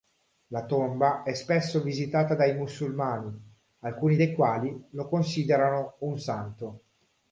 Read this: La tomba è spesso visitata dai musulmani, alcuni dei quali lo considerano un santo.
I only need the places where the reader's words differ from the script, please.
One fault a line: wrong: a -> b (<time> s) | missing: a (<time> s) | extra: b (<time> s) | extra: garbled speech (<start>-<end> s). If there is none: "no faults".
no faults